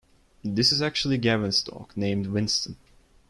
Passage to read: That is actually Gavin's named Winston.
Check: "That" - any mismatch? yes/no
yes